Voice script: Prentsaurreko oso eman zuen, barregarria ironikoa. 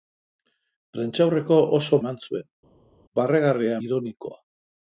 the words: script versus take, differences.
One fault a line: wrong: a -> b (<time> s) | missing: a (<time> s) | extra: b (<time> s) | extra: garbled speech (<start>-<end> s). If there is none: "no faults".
no faults